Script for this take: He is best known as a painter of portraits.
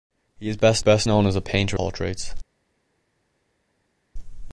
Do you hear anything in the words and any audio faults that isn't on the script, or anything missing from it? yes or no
yes